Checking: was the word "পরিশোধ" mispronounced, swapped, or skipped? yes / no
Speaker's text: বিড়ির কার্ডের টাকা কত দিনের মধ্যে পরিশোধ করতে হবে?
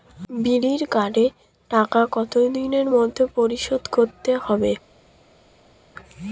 no